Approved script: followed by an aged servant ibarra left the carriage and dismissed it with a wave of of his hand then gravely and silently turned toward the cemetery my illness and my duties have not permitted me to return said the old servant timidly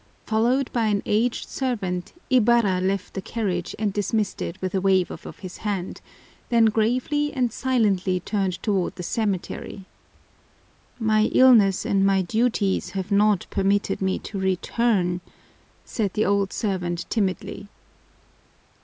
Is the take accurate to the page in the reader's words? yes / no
yes